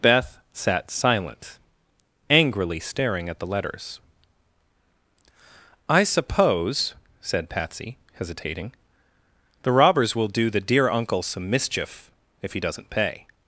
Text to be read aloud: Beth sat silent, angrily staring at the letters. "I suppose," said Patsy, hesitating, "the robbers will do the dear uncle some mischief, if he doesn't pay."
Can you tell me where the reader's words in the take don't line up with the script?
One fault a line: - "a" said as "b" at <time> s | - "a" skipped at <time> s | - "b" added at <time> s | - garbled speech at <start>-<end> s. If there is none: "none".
none